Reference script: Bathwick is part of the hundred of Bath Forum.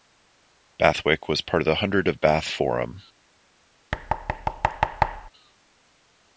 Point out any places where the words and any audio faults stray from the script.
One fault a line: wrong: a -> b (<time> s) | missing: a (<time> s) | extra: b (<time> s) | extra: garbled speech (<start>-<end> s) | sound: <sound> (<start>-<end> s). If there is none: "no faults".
wrong: is -> was (1.3 s)
sound: thud (3.9-5.3 s)